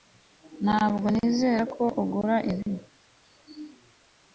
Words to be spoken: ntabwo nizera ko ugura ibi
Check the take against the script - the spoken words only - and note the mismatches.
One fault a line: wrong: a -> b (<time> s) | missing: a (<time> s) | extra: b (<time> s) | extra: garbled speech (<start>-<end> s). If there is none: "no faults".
no faults